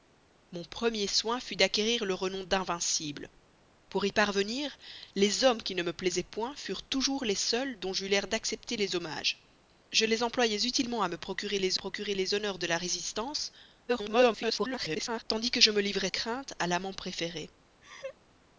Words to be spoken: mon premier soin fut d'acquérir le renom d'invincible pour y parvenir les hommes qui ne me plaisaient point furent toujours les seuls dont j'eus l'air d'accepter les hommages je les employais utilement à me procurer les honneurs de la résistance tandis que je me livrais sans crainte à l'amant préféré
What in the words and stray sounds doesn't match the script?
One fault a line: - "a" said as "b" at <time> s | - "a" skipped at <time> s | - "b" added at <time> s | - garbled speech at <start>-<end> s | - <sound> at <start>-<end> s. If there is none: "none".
- "procurer les" added at 11.7 s
- garbled speech at 13.9-15.2 s
- "sans" skipped at 16.1 s
- laugh at 17.8-18.2 s